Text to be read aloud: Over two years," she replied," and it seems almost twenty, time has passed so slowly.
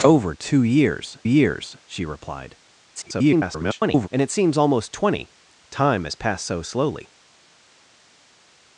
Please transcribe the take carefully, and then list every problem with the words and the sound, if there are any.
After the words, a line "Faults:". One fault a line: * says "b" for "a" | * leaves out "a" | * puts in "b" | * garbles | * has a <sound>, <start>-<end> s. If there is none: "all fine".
Over two years years," she replied," [garbled] and it seems almost twenty, time has passed so slowly.
Faults:
* puts in "years"
* garbles